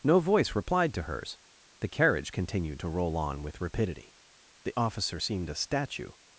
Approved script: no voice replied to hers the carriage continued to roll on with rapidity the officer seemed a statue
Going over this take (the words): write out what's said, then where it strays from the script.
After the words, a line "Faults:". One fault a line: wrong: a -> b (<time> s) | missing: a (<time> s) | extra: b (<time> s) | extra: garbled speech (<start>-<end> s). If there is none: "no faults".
no voice replied to hers the carriage continued to roll on with rapidity the officer seemed a statue
Faults:
no faults